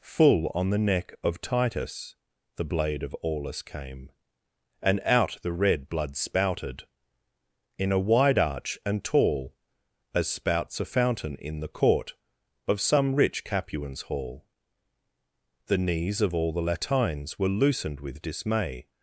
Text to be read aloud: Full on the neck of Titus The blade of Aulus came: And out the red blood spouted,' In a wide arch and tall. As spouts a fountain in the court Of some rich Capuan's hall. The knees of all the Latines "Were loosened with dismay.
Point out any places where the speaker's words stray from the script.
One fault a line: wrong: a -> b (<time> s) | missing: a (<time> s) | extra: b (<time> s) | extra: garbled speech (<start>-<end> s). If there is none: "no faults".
no faults